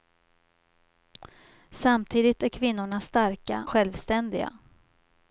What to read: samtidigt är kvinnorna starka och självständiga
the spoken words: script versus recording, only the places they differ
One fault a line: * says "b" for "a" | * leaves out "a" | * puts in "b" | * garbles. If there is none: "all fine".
* leaves out "och"